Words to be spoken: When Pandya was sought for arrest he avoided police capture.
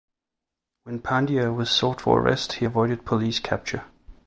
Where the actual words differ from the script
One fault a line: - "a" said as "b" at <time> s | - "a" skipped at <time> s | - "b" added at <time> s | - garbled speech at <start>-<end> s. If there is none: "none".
none